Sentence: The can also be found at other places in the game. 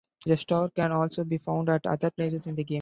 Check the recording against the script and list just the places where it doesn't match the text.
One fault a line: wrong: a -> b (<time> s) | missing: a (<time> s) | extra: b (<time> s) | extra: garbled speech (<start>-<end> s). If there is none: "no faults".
no faults